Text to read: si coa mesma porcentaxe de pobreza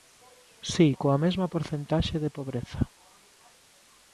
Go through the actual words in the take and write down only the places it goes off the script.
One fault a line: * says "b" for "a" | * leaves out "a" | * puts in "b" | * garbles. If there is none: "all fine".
all fine